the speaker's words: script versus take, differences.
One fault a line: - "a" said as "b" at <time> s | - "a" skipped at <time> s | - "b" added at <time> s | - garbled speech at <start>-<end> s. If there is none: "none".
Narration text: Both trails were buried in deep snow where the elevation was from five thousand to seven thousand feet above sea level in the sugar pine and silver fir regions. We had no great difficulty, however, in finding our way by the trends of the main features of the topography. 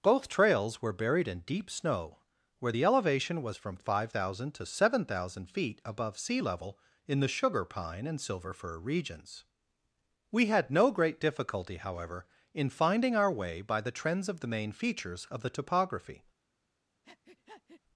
none